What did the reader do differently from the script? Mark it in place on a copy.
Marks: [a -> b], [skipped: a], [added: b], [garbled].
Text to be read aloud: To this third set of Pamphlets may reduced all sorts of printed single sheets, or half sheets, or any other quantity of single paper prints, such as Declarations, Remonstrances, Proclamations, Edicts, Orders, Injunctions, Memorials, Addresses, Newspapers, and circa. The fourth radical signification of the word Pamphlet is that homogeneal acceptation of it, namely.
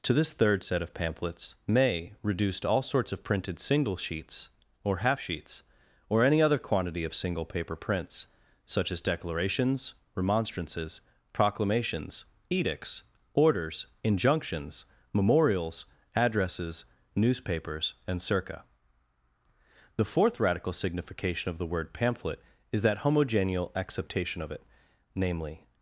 To this third set of Pamphlets may reduced all sorts of printed single sheets, or half sheets, or any other quantity of single paper prints, such as Declarations, Remonstrances, Proclamations, Edicts, Orders, Injunctions, Memorials, Addresses, Newspapers, and circa. The fourth radical signification of the word Pamphlet is that homogeneal acceptation of it, namely.